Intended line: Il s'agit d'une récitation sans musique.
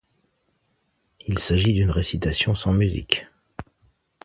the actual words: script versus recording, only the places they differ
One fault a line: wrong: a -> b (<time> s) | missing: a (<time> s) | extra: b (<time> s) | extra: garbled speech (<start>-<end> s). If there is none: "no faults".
no faults